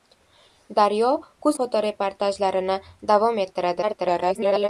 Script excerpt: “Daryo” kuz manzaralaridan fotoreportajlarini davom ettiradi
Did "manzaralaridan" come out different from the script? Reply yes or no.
yes